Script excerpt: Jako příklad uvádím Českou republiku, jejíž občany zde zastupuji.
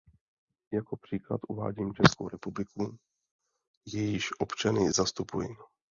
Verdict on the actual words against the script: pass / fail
fail